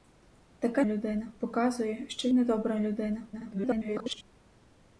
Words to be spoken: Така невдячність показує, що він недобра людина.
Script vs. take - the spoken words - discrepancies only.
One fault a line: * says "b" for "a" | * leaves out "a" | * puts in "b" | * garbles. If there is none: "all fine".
* says "людина" for "невдячність"
* leaves out "він"
* garbles